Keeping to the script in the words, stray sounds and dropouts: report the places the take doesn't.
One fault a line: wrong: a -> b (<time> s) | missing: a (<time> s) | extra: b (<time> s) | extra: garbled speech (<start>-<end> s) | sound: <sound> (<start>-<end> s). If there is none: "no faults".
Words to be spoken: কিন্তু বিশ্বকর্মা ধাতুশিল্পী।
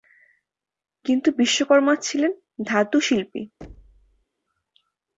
extra: ছিলেন (2.0 s)
sound: thud (3.6-4.3 s)